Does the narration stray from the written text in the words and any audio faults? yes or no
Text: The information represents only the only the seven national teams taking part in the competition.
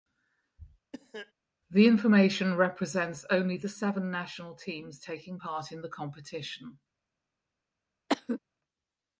yes